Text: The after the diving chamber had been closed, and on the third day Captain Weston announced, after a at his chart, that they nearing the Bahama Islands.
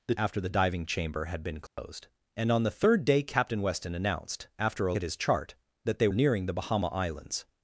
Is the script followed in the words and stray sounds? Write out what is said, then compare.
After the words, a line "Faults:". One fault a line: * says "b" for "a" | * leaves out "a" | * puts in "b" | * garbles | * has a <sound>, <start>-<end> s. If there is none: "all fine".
The after the diving chamber had been closed, and on the third day Captain Weston announced, after a at his chart, that they nearing the Bahama Islands.
Faults:
* has a dropout, 1.7-1.8 s